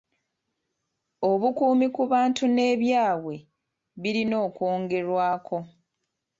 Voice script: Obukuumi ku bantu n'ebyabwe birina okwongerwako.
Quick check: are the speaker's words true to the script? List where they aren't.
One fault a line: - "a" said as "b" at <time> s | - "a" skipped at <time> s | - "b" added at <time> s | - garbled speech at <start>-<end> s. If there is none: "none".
none